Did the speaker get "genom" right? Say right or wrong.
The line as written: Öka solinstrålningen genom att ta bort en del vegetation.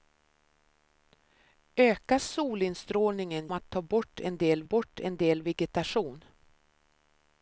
wrong